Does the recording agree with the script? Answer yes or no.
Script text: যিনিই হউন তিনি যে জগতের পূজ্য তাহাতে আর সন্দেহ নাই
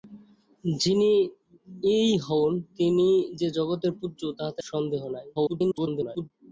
no